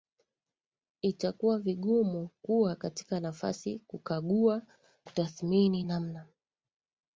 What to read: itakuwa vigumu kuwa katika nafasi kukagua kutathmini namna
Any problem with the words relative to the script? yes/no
no